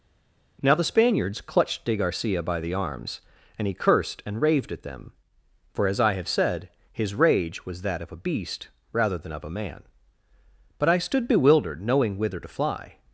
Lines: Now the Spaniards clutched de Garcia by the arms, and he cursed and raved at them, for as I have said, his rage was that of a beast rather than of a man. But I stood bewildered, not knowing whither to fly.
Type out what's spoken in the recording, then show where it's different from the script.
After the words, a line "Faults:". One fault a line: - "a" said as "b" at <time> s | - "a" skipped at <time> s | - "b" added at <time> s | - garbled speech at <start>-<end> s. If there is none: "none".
Now the Spaniards clutched de Garcia by the arms, and he cursed and raved at them, for as I have said, his rage was that of a beast rather than of a man. But I stood bewildered, knowing whither to fly.
Faults:
- "not" skipped at 11.8 s